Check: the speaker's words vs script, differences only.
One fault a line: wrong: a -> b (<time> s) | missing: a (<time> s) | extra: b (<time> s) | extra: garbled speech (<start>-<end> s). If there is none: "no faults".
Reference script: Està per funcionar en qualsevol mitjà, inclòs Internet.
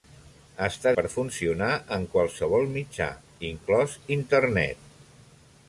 no faults